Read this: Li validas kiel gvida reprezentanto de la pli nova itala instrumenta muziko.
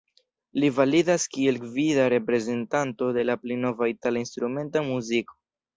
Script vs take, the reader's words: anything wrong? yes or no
no